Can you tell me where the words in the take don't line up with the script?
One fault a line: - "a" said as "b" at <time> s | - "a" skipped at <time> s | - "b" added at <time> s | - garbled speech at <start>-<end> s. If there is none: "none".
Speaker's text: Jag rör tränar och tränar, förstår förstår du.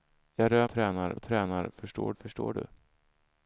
none